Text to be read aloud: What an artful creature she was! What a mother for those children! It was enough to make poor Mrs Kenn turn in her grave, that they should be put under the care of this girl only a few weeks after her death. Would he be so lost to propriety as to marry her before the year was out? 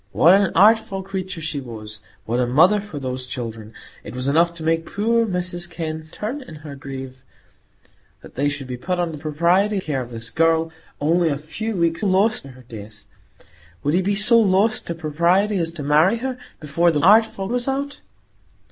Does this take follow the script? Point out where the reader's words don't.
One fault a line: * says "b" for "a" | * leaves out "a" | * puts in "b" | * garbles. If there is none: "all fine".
* says "propriety" for "the"
* says "lost" for "after"
* says "artful" for "year"